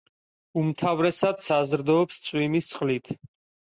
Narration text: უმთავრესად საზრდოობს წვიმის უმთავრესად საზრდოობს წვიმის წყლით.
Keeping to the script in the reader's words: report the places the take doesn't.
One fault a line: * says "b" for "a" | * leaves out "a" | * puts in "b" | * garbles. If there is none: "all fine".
* leaves out "უმთავრესად საზრდოობს წვიმის"